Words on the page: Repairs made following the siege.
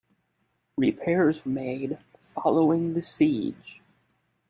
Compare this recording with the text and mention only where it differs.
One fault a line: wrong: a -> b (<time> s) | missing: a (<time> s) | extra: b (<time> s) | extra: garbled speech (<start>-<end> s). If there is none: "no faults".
no faults